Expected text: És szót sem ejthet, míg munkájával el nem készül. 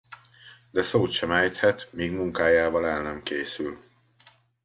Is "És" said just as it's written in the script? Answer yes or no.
no